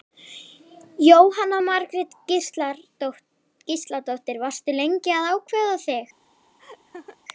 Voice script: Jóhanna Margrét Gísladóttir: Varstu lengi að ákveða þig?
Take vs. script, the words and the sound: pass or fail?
fail